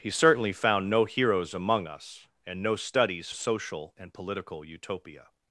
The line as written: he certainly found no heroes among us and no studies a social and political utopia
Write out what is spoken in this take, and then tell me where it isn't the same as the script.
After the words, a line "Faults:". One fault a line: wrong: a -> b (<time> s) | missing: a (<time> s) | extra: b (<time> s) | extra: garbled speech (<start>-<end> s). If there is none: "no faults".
he certainly found no heroes among us and no studies a social and political utopia
Faults:
no faults